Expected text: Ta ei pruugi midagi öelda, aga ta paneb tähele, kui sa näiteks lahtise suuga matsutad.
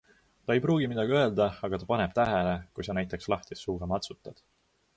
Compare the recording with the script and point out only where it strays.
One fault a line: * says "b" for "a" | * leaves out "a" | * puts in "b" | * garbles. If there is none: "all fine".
all fine